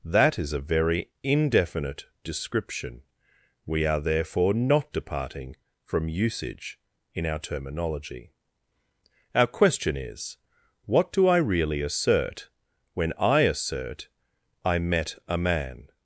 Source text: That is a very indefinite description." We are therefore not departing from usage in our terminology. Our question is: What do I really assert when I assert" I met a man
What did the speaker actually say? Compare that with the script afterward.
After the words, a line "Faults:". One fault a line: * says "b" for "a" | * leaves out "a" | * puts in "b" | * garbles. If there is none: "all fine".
That is a very indefinite description." We are therefore not departing from usage in our terminology. Our question is: What do I really assert when I assert" I met a man
Faults:
all fine